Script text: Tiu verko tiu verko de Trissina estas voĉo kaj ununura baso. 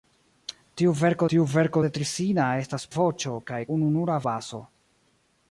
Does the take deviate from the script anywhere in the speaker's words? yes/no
no